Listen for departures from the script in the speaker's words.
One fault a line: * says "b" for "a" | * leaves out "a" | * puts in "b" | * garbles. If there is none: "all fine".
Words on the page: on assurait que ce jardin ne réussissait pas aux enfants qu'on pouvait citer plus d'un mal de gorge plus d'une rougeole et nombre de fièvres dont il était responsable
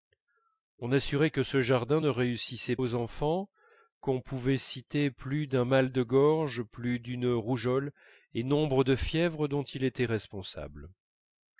* leaves out "pas"